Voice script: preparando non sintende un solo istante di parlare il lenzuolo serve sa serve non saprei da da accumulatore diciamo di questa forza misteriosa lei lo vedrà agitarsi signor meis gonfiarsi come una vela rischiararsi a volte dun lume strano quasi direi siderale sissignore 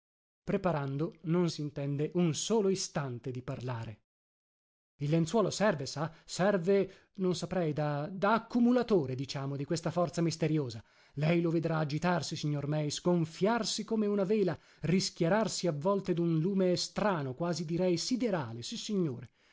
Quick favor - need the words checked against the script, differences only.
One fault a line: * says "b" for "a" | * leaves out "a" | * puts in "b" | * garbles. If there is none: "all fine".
all fine